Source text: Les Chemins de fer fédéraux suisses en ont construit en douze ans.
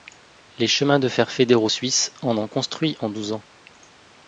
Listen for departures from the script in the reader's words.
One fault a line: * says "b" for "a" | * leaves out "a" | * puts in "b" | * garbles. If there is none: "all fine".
all fine